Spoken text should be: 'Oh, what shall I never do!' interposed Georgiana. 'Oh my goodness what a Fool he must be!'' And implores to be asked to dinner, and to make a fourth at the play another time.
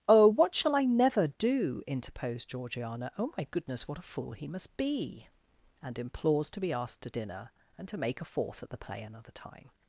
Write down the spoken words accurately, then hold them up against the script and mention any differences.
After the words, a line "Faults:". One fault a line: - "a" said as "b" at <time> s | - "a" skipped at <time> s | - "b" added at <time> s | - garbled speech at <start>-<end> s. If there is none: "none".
'Oh, what shall I never do!' interposed Georgiana. 'Oh my goodness what a Fool he must be!'' And implores to be asked to dinner, and to make a fourth at the play another time.
Faults:
none